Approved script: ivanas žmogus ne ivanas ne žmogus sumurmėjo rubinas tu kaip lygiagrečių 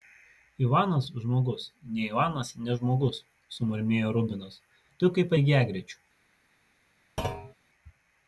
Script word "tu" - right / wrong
right